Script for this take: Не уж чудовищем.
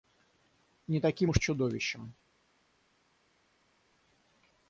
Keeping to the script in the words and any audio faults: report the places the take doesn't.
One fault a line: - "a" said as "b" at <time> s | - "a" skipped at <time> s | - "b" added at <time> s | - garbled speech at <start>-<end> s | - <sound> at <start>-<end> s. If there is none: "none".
- "таким" added at 1.0 s